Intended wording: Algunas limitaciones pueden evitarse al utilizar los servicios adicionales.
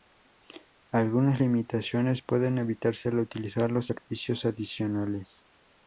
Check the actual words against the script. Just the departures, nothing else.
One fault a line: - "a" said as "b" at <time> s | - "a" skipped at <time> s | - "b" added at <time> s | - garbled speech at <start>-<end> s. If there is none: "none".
none